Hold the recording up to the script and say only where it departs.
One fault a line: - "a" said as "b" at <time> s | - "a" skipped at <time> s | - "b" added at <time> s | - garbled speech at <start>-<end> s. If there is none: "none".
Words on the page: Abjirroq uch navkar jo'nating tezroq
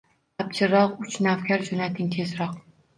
none